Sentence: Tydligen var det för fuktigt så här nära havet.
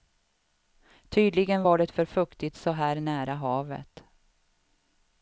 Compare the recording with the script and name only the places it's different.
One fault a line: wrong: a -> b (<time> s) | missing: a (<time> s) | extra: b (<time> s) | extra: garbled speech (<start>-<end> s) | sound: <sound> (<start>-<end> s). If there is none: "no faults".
no faults